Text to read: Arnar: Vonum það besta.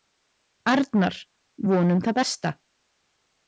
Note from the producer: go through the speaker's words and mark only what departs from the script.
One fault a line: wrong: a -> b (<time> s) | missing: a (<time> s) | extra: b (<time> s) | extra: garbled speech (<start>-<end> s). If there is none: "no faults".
no faults